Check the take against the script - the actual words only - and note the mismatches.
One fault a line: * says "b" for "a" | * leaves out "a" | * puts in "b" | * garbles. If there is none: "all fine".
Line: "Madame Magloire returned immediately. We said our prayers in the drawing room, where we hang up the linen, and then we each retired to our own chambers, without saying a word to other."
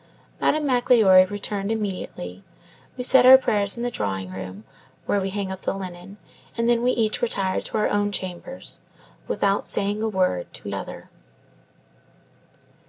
all fine